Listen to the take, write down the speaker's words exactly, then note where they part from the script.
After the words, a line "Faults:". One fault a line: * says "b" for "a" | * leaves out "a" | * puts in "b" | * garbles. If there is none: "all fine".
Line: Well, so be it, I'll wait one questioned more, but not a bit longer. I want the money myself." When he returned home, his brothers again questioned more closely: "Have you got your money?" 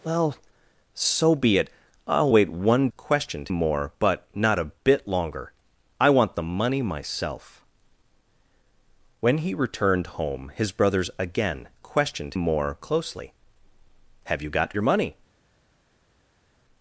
Well, so be it, I'll wait one questioned more, but not a bit longer. I want the money myself." When he returned home, his brothers again questioned more closely: "Have you got your money?"
Faults:
all fine